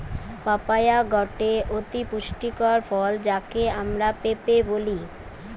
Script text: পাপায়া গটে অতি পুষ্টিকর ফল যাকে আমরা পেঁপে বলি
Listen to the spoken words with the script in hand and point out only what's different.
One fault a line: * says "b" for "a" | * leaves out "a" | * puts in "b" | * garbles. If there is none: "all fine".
all fine